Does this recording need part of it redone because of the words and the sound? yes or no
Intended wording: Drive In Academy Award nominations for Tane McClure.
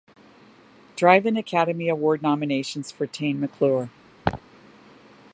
yes